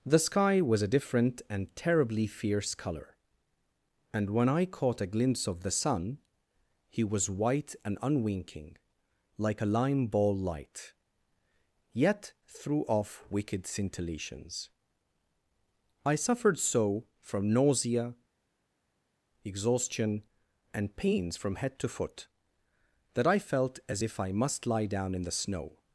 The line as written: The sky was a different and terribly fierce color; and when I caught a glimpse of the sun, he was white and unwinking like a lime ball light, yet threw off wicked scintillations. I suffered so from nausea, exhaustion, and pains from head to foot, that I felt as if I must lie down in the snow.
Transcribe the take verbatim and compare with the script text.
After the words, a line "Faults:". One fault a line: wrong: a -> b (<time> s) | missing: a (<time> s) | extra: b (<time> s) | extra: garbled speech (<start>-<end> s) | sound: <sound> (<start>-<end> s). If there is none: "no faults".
The sky was a different and terribly fierce color; and when I caught a glimpse of the sun, he was white and unwinking like a lime ball light, yet threw off wicked scintillations. I suffered so from nausea, exhaustion, and pains from head to foot, that I felt as if I must lie down in the snow.
Faults:
no faults